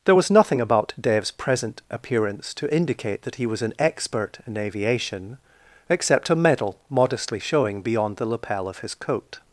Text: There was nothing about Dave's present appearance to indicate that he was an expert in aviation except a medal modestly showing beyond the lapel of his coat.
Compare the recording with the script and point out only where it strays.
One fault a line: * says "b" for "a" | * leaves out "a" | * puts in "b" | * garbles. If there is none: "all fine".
all fine